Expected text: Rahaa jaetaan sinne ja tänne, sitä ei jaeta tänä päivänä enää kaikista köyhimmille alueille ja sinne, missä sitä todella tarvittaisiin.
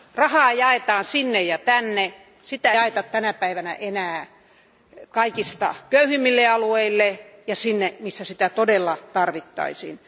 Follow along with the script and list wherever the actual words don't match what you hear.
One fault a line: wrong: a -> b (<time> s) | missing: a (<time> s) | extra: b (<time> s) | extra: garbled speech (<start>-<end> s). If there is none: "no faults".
missing: ei (2.7 s)